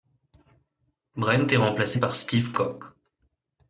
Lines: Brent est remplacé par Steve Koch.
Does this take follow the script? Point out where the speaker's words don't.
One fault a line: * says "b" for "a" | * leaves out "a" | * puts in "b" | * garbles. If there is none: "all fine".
all fine